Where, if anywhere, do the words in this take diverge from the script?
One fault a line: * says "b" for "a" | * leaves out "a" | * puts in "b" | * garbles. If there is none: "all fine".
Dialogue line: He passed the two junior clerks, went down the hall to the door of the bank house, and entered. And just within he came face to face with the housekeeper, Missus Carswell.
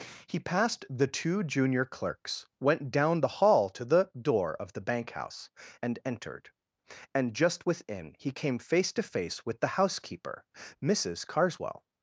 all fine